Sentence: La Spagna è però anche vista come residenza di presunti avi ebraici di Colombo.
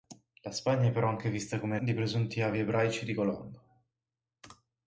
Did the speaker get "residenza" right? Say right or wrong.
wrong